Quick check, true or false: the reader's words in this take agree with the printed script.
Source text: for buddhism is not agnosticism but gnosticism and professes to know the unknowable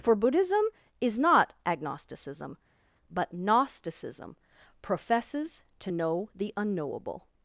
false